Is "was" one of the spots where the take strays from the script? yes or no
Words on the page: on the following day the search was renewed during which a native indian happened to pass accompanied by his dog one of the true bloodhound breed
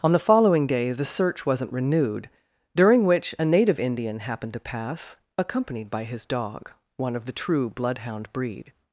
yes